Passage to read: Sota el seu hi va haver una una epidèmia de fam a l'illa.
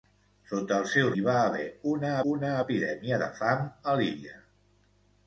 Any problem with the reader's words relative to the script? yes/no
no